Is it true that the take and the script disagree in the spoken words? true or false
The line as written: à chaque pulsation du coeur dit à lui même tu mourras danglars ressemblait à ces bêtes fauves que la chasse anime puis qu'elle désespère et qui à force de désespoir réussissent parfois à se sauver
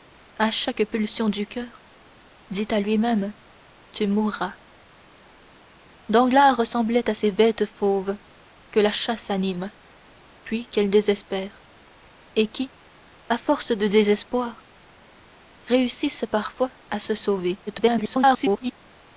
true